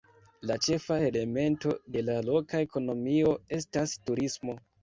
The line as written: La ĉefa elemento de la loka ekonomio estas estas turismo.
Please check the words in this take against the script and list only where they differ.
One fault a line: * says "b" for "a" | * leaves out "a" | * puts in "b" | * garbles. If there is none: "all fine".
* leaves out "estas"